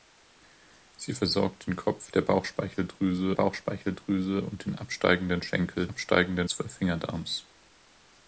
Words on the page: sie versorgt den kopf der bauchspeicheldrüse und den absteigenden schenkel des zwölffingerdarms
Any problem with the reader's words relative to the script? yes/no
yes